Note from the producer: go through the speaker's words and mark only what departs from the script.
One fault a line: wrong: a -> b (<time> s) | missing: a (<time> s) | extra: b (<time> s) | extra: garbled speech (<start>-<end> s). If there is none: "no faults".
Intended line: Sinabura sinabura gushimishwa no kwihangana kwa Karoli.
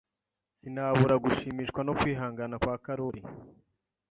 missing: sinabura (1.1 s)